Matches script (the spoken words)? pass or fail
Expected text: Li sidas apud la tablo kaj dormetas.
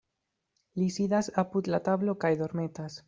pass